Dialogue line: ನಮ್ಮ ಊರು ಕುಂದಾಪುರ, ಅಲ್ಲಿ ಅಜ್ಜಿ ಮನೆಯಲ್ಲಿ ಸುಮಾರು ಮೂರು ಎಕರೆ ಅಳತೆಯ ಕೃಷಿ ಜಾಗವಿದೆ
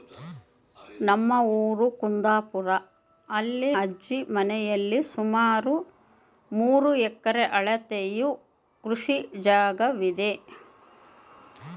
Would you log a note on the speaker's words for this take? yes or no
no